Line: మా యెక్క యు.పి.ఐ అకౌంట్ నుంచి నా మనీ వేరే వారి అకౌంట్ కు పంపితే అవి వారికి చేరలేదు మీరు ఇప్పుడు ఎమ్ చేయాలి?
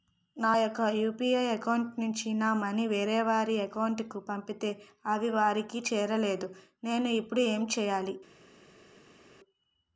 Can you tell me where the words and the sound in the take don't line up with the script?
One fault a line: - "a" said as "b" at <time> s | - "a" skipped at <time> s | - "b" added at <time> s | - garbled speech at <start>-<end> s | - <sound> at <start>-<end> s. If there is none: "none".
- "మా" said as "నా" at 0.4 s
- "మీరు" said as "నేను" at 6.8 s